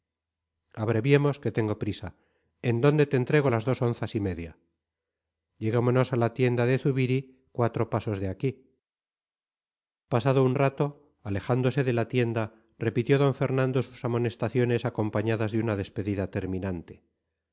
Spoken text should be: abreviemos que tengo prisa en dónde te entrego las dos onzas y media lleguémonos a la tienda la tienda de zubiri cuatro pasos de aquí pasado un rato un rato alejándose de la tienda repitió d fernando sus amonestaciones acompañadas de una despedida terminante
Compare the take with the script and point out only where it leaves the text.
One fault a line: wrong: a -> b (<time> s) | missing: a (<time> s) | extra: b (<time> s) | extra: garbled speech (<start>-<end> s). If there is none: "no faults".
missing: la tienda (6.6 s)
missing: un rato (11.1 s)